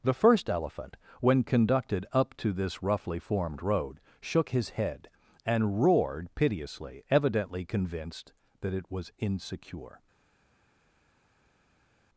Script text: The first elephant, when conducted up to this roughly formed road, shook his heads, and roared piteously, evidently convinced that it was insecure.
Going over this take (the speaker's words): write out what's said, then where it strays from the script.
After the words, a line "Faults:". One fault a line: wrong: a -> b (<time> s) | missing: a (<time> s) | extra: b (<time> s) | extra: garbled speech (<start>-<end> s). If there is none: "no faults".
The first elephant, when conducted up to this roughly formed road, shook his head, and roared piteously, evidently convinced that it was insecure.
Faults:
wrong: heads -> head (4.7 s)